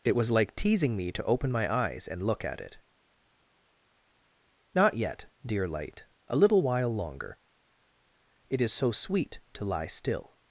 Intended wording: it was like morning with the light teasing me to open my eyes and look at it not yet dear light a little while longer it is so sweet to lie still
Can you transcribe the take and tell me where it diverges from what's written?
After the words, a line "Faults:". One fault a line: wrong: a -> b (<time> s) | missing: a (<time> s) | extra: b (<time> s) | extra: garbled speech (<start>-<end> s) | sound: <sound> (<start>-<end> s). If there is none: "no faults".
it was like teasing me to open my eyes and look at it not yet dear light a little while longer it is so sweet to lie still
Faults:
missing: morning with the light (0.5 s)